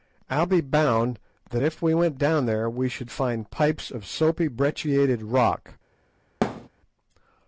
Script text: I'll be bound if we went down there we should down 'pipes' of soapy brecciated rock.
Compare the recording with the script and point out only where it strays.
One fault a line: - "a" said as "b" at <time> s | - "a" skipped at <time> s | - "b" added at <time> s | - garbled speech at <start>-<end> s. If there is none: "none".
- "that" added at 1.5 s
- "down" said as "find" at 3.1 s